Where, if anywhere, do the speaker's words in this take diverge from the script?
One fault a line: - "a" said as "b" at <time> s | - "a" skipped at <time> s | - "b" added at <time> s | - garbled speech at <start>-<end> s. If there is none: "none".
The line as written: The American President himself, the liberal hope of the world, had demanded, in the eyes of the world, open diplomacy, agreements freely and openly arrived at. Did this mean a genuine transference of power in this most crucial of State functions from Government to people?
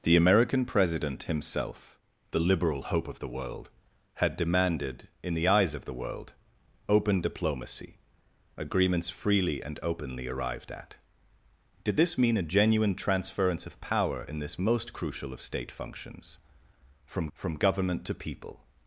- "from" added at 17.3 s